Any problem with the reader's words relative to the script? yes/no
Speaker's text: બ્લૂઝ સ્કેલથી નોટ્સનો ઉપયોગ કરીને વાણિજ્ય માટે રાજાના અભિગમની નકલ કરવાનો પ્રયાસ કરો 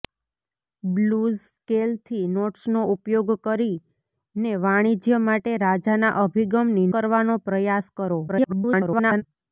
yes